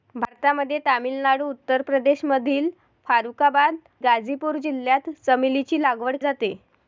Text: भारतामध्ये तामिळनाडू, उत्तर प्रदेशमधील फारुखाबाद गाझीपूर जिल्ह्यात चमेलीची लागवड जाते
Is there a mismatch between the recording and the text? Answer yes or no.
no